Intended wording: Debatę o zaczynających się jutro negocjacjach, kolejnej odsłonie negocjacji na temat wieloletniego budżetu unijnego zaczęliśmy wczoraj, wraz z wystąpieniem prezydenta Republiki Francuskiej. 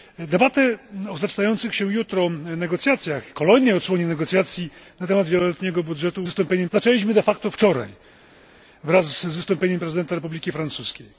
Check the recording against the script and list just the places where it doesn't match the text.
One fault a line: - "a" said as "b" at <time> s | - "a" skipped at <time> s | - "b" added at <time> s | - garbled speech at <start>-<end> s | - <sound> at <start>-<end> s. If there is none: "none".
- "unijnego" said as "wystąpieniem" at 6.2 s